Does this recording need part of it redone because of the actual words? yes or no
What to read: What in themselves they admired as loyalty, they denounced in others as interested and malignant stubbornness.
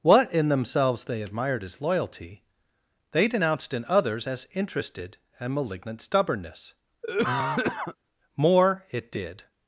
yes